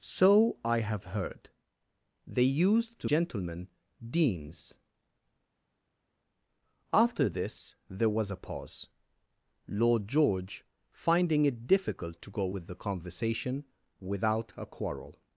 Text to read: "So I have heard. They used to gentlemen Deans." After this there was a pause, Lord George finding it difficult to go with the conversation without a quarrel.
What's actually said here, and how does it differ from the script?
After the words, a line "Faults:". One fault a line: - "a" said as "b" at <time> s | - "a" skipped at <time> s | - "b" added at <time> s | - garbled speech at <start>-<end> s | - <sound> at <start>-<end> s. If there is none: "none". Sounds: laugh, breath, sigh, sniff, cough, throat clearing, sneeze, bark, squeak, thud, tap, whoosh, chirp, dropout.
"So I have heard. They used to gentlemen Deans." After this there was a pause, Lord George finding it difficult to go with the conversation without a quarrel.
Faults:
none